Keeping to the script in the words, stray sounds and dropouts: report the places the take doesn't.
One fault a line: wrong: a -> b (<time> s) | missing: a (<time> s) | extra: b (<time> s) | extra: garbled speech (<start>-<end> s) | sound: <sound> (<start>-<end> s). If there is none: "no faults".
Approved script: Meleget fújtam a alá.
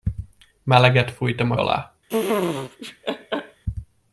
sound: laugh (2.1-3.6 s)